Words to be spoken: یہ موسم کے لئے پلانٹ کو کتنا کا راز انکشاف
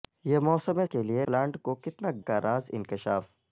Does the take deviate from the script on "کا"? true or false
false